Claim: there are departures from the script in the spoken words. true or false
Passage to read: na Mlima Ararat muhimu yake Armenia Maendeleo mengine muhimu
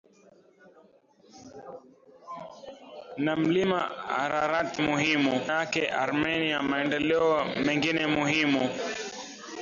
false